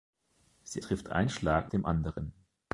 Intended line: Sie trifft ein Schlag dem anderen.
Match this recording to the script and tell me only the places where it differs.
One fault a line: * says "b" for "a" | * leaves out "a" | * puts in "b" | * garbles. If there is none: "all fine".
all fine